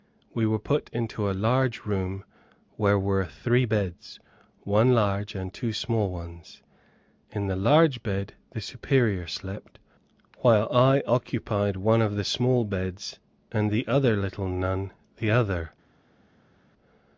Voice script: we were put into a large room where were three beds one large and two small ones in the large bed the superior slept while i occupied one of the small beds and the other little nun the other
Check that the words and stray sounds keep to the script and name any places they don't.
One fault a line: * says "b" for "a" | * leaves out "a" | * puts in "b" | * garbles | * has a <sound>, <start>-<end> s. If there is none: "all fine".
all fine